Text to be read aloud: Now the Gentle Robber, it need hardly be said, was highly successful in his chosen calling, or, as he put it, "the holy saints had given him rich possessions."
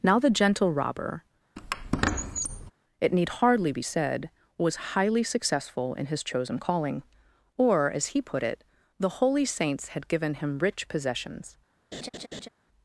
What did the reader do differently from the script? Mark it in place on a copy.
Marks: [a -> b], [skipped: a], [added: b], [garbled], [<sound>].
Now the Gentle Robber, [squeak] it need hardly be said, was highly successful in his chosen calling, or, as he put it, "the holy saints had given him rich possessions." [laugh]